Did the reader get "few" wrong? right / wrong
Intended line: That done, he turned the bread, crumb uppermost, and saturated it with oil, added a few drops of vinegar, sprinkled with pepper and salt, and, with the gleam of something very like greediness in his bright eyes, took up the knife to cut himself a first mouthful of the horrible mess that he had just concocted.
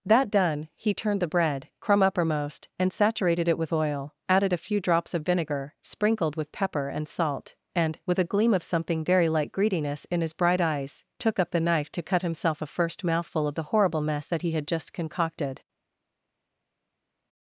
right